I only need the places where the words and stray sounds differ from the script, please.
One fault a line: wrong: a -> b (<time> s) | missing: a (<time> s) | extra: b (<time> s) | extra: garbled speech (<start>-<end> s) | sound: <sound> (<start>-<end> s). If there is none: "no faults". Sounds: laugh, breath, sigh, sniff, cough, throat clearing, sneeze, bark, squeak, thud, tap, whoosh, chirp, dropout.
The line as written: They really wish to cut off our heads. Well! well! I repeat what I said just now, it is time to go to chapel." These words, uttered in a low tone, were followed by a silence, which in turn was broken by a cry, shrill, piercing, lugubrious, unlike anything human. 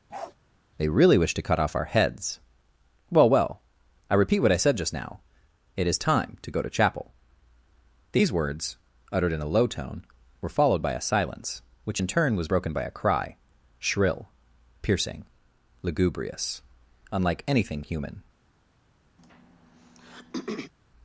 sound: bark (0.1-0.3 s)
sound: throat clearing (19.2-20.7 s)